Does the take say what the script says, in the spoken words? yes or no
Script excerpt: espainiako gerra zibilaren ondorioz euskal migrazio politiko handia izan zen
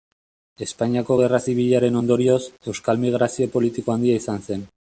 yes